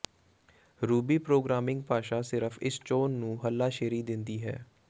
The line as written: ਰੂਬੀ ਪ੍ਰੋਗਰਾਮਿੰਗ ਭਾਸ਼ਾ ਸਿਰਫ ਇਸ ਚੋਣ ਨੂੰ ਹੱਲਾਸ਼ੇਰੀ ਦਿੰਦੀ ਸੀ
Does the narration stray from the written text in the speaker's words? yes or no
yes